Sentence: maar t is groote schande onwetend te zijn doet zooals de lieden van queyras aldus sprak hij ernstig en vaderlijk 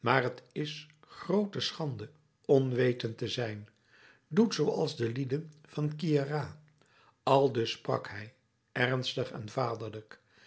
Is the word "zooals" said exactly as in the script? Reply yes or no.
yes